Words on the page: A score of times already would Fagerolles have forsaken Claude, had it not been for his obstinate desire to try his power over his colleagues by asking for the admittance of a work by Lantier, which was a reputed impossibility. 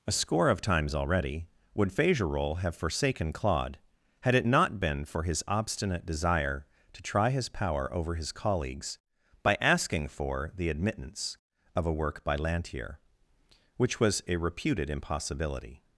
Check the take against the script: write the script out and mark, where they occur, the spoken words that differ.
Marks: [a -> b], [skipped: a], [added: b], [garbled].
A score of times already would Fagerolles have forsaken Claude, had it not been for his obstinate desire to try his power over his colleagues by asking for the admittance of a work by Lantier, which was a reputed impossibility.